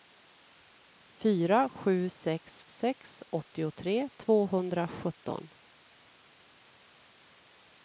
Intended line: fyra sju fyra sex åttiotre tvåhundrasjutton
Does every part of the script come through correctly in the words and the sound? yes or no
no